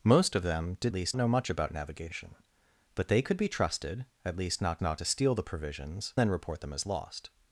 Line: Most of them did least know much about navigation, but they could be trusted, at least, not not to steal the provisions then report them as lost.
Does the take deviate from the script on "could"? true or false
false